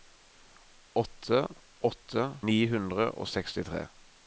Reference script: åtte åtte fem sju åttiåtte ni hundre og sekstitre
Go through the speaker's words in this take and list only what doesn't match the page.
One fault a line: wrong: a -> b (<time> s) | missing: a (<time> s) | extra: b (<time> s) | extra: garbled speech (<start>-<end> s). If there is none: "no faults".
missing: fem sju åttiåtte (2.2 s)